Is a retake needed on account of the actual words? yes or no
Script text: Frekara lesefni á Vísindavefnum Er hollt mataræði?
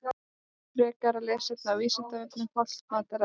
no